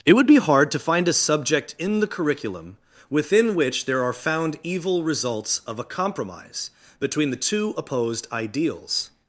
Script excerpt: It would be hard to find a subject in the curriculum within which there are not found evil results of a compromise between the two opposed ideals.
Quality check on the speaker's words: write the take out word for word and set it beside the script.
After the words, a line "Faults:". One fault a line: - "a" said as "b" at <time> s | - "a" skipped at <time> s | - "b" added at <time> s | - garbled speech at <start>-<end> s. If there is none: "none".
It would be hard to find a subject in the curriculum within which there are found evil results of a compromise between the two opposed ideals.
Faults:
- "not" skipped at 4.1 s